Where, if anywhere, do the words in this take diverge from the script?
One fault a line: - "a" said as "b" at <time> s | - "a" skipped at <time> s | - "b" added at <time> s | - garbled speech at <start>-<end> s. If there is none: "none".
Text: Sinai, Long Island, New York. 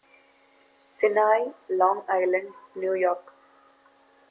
none